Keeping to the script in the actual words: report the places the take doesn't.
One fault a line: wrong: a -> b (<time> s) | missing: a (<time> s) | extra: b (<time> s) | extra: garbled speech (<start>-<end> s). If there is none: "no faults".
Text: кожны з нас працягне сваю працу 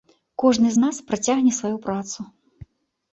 no faults